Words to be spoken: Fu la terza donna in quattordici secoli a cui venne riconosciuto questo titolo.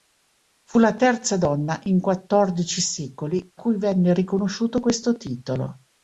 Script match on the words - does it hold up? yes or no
no